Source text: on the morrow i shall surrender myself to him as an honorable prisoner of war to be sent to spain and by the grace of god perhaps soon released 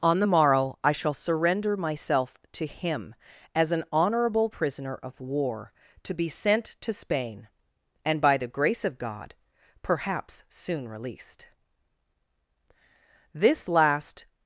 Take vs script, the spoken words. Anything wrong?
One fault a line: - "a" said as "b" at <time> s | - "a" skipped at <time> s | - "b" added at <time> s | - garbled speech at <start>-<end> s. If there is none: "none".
- "this last" added at 13.3 s